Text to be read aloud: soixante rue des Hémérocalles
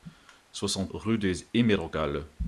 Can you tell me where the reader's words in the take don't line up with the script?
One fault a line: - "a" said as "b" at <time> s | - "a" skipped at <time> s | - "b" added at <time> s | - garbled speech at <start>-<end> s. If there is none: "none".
none